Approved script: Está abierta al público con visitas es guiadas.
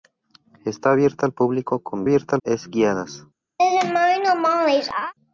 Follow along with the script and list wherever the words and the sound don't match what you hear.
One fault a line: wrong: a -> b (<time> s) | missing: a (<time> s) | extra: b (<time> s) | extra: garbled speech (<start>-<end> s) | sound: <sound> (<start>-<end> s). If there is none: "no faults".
wrong: visitas -> abierta (2.0 s)
sound: laugh (3.6-5.1 s)